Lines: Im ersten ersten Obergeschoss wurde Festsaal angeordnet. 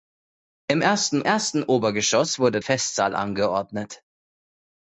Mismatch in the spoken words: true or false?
false